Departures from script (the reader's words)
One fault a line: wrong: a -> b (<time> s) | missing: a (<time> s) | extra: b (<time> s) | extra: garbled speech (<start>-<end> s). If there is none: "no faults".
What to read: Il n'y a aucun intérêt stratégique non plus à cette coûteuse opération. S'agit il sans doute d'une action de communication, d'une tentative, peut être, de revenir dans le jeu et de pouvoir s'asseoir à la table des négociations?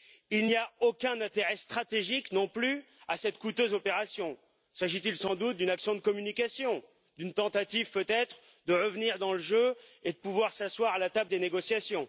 no faults